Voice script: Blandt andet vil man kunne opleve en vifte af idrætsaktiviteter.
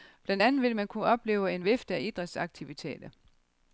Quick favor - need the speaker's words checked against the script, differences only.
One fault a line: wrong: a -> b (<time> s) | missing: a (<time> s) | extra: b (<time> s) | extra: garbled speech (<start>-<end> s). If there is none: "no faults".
no faults